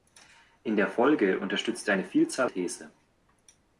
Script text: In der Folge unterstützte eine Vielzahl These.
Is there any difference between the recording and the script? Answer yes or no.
no